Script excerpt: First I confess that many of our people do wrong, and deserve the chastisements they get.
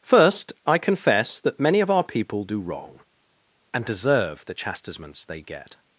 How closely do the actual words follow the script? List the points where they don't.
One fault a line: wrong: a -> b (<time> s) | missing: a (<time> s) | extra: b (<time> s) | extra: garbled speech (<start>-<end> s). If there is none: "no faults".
no faults